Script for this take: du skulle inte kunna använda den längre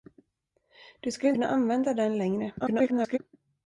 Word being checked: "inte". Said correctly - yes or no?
no